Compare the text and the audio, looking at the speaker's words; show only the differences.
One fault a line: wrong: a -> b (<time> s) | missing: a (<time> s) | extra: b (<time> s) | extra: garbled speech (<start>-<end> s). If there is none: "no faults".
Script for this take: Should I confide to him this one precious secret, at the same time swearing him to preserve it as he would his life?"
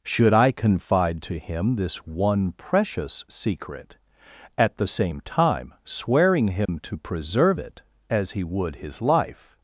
no faults